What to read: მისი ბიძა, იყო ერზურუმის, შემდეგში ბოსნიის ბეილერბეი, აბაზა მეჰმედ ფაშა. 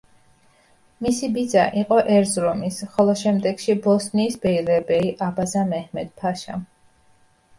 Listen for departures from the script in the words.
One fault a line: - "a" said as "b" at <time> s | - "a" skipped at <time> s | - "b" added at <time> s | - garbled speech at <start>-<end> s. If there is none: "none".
- "ხოლო" added at 2.9 s